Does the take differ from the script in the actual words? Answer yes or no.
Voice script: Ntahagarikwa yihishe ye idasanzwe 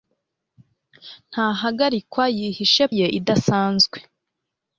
no